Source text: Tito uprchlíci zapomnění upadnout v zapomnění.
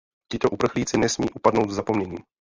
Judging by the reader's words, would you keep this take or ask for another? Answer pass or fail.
fail